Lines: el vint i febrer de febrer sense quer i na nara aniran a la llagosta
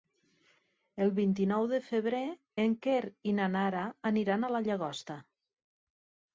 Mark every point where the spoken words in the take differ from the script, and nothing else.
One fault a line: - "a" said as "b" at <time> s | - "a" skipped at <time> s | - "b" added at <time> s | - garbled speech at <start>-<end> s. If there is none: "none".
- "febrer" said as "nou" at 1.5 s
- "sense" said as "en" at 2.6 s